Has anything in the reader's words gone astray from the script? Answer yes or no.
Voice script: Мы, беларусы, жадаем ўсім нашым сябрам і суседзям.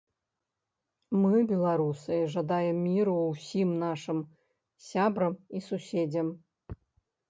yes